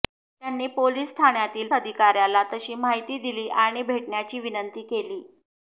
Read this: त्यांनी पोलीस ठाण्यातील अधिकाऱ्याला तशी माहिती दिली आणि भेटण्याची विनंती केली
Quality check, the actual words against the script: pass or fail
pass